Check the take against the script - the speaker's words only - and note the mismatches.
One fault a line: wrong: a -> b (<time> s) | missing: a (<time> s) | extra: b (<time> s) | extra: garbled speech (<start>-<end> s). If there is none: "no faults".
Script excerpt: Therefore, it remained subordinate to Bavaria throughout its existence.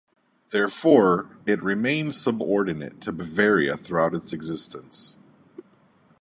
no faults